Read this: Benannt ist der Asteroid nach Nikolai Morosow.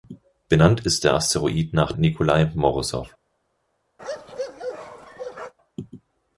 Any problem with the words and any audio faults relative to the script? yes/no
yes